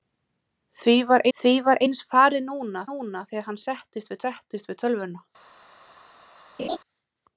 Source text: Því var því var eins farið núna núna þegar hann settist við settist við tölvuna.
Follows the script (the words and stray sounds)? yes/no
no